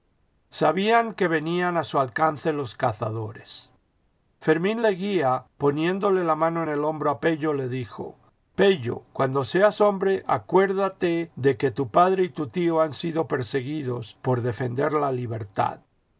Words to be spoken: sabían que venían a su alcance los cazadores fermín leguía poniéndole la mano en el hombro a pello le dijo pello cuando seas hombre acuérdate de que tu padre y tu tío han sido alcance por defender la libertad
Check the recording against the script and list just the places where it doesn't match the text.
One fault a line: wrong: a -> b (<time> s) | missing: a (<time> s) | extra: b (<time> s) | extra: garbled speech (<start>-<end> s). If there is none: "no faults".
wrong: alcance -> perseguidos (13.3 s)